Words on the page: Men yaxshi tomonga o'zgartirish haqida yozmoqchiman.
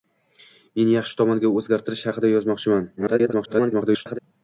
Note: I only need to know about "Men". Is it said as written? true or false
true